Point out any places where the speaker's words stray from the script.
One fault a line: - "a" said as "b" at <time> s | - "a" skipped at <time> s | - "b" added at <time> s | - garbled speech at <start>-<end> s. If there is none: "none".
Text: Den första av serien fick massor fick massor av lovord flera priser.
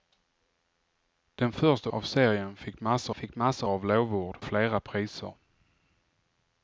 none